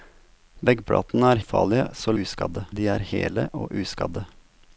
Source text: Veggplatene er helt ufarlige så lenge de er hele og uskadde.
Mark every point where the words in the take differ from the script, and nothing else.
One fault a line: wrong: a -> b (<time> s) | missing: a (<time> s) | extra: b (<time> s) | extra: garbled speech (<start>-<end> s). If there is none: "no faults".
missing: helt (1.4 s)
wrong: lenge -> uskadde (2.2 s)